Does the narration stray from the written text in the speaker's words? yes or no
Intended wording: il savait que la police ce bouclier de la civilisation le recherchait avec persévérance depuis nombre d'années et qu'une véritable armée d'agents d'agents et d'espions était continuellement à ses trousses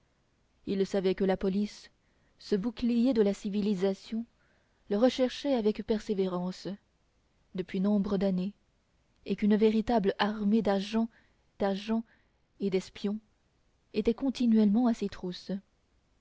no